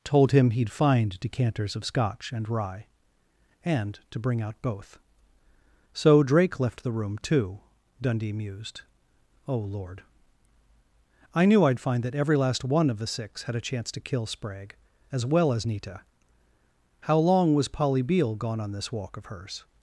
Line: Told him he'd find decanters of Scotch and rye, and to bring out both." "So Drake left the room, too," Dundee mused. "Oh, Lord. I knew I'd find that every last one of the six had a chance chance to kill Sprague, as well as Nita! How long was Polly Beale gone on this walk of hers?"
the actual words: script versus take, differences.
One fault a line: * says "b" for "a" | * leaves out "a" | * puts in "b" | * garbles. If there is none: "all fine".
* leaves out "chance"